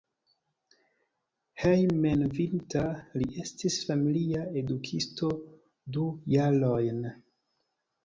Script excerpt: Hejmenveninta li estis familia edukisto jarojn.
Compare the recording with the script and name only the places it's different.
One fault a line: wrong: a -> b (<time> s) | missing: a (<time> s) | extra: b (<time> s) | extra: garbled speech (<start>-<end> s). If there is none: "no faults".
extra: du (6.0 s)